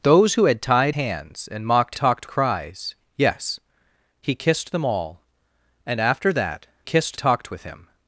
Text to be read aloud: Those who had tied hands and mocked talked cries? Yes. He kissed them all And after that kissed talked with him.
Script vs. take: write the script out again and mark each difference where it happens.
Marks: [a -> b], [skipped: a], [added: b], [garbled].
Those who had tied hands and mocked talked cries? Yes. He kissed them all And after that kissed talked with him.